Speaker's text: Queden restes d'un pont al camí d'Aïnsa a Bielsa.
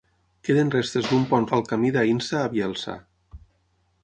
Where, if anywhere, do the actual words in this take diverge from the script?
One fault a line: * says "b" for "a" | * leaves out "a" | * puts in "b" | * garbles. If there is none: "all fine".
all fine